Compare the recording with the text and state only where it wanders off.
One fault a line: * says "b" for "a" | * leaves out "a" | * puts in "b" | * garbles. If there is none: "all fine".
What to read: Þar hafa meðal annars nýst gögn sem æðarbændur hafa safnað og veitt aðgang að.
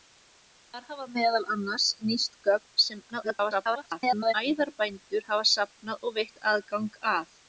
* garbles